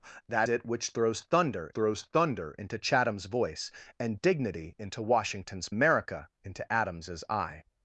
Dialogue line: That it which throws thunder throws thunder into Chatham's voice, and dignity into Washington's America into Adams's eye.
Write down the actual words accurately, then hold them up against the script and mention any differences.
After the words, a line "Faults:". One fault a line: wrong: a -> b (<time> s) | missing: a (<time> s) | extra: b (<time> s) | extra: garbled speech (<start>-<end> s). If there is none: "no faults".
That it which throws thunder throws thunder into Chatham's voice, and dignity into Washington's America into Adams's eye.
Faults:
no faults